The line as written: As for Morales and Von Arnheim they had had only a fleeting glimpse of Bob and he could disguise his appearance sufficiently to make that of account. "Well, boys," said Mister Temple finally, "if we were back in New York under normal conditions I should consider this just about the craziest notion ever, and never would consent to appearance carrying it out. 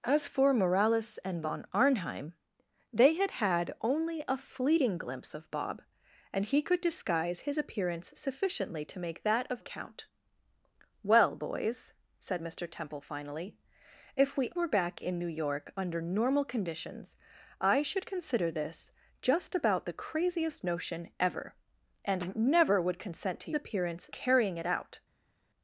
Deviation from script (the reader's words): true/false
false